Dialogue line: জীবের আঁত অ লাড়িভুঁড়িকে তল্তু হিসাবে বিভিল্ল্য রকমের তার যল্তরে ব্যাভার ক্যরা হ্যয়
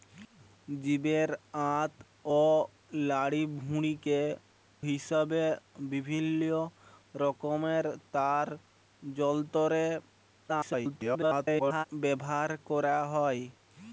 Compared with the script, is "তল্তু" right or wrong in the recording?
wrong